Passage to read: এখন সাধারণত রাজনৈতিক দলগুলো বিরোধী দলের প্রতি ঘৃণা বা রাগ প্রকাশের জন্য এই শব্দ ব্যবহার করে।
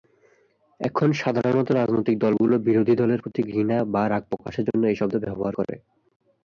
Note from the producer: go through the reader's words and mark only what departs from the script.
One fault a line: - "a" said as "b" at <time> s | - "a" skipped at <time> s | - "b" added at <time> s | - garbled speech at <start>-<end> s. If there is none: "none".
none